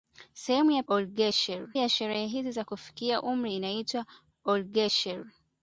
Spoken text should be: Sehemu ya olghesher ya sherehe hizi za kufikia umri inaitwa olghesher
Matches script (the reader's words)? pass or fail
pass